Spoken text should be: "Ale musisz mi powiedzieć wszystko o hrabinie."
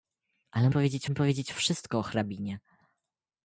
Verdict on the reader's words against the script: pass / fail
fail